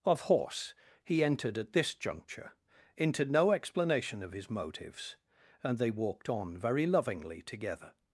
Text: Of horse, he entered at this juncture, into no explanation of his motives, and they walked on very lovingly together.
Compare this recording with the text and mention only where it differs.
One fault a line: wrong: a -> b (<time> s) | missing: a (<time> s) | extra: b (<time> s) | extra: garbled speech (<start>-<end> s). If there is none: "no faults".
no faults